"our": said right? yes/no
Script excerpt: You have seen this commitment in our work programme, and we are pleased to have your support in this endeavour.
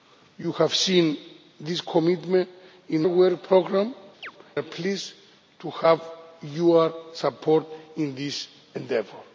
no